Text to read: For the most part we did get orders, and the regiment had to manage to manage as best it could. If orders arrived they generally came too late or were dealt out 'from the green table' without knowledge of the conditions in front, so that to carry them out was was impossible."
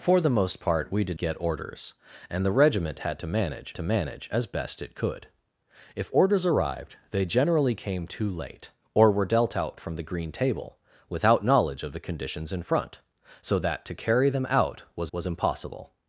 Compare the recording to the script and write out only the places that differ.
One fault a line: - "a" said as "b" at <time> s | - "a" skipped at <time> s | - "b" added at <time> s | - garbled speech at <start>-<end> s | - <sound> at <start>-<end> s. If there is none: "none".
none